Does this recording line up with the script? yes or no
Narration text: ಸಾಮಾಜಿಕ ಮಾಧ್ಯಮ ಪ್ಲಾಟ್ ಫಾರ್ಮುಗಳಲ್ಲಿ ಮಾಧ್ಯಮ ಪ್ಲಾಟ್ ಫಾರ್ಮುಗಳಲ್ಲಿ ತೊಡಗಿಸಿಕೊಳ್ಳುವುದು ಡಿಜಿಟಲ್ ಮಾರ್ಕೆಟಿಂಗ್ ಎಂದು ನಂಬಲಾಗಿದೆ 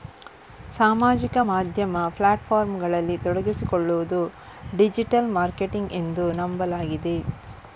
no